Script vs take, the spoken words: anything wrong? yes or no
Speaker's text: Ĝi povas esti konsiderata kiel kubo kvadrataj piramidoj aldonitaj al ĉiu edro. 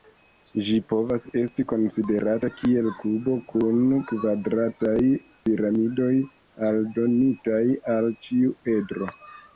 yes